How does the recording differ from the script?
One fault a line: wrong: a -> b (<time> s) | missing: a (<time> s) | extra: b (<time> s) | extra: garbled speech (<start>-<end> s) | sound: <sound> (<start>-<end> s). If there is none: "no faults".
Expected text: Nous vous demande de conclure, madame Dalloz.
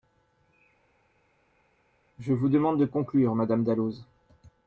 wrong: Nous -> Je (2.2 s)